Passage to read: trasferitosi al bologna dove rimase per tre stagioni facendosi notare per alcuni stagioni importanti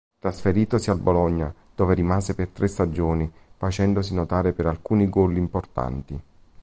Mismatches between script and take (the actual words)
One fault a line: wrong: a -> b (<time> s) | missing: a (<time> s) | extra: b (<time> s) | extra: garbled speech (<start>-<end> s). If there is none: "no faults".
wrong: stagioni -> gol (5.1 s)